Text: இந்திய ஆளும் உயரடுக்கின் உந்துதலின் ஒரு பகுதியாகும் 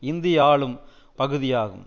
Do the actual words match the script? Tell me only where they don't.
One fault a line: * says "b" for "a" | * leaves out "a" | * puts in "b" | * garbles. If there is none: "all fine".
* leaves out "உயரடுக்கின் உந்துதலின் ஒரு"